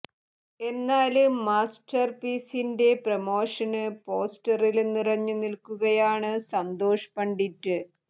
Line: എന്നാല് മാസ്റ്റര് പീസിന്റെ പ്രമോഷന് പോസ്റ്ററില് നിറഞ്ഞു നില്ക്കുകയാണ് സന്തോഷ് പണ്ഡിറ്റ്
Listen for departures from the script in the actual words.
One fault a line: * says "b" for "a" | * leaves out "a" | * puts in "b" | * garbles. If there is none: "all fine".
all fine